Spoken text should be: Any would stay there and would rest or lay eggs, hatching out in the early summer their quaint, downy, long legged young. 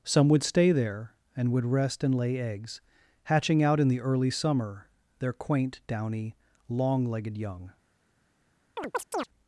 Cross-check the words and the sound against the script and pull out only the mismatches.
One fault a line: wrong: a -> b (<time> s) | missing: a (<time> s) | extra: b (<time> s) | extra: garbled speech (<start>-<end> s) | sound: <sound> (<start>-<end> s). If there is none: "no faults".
wrong: Any -> Some (0.0 s)
wrong: or -> and (2.0 s)
sound: chirp (8.8-9.3 s)